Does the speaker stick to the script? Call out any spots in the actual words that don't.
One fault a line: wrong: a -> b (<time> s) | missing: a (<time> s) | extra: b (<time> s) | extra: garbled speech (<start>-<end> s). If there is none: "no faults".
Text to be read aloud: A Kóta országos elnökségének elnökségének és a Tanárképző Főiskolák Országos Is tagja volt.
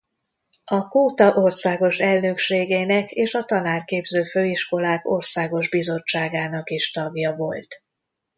missing: elnökségének (3.1 s)
extra: Bizottságának (5.7 s)